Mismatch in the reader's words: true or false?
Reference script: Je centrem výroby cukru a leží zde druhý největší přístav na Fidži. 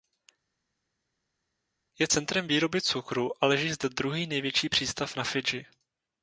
false